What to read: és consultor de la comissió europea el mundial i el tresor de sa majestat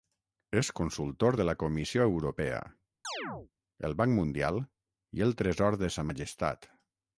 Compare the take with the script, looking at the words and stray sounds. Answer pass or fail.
fail